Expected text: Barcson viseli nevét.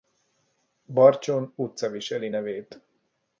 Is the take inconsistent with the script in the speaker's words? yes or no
yes